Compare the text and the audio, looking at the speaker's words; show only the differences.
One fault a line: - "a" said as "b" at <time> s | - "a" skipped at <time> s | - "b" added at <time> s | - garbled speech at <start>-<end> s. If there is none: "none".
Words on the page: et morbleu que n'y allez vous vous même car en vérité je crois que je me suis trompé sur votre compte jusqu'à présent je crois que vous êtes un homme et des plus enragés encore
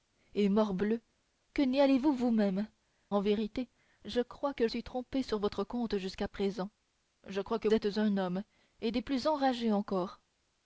- "car" skipped at 2.7 s
- "je me" skipped at 4.7 s
- "vous" skipped at 7.7 s